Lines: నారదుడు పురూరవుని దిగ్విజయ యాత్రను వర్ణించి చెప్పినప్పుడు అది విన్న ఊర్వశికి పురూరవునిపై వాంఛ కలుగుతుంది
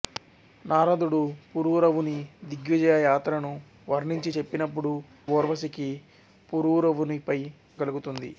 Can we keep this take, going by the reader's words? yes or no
no